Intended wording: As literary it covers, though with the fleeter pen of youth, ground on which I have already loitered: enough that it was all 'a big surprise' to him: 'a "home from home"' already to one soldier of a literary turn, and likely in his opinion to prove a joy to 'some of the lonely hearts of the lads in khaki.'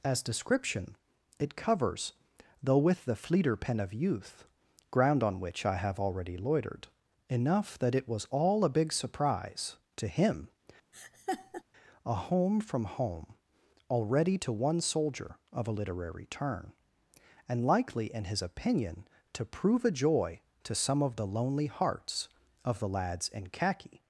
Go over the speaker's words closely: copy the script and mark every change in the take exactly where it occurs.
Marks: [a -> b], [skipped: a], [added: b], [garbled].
As [literary -> description] it covers, though with the fleeter pen of youth, ground on which I have already loitered: enough that it was all 'a big surprise' to him: 'a "home from home"' already to one soldier of a literary turn, and likely in his opinion to prove a joy to 'some of the lonely hearts of the lads in khaki.'